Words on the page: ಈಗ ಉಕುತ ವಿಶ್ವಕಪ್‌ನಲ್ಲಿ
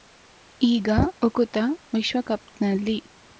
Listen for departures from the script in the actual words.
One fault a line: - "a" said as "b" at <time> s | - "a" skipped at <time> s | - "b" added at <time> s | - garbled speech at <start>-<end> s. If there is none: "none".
none